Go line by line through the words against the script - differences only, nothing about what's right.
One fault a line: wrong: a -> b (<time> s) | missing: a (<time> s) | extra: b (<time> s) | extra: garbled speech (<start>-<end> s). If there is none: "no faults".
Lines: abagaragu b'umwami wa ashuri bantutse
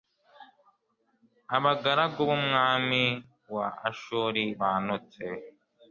no faults